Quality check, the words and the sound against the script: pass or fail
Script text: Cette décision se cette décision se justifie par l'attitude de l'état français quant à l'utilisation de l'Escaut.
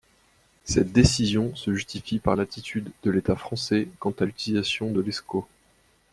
fail